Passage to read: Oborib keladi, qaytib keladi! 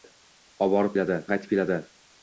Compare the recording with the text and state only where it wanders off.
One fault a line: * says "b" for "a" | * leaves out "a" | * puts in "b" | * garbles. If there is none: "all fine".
all fine